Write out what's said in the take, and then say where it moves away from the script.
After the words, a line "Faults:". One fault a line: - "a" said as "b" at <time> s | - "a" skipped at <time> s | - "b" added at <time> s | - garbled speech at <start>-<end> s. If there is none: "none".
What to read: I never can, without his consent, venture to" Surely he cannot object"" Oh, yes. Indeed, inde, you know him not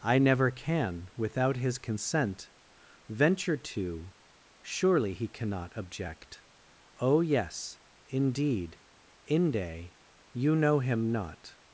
I never can, without his consent, venture to" Surely he cannot object"" Oh, yes. Indeed, inde, you know him not
Faults:
none